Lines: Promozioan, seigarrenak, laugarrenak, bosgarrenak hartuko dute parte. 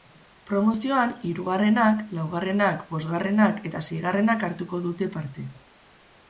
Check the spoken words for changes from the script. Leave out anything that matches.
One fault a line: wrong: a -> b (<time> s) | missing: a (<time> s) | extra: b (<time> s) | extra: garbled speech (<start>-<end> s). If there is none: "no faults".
wrong: seigarrenak -> hirugarrenak (1.3 s)
extra: eta seigarrenak (3.7 s)